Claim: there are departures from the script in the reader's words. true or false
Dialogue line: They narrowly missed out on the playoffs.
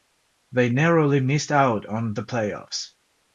false